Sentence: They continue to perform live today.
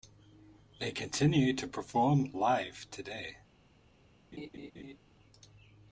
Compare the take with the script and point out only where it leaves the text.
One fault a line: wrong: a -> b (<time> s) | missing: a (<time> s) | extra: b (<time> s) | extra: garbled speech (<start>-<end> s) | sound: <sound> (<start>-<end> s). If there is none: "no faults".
sound: laugh (4.3-5.0 s)